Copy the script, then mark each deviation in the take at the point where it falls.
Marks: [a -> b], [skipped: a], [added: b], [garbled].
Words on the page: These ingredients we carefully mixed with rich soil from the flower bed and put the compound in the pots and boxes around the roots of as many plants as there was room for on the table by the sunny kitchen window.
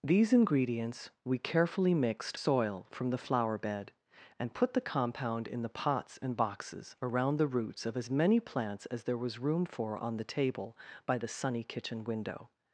These ingredients we carefully mixed [skipped: with rich] soil from the flower bed and put the compound in the pots and boxes around the roots of as many plants as there was room for on the table by the sunny kitchen window.